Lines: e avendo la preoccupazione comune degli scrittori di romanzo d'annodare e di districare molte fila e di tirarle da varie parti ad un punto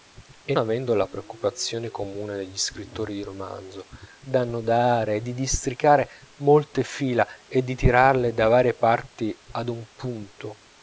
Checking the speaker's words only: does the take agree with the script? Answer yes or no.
yes